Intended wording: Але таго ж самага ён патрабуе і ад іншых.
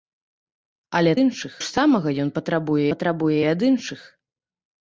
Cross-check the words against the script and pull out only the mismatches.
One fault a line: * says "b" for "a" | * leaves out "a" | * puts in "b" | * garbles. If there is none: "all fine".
* says "іншых" for "таго"
* puts in "патрабуе"